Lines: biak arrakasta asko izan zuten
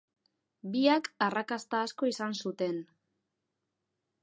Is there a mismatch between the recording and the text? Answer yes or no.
no